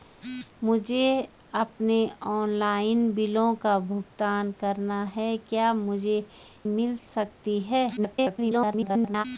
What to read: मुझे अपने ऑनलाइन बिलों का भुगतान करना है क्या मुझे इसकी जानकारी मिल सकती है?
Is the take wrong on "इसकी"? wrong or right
wrong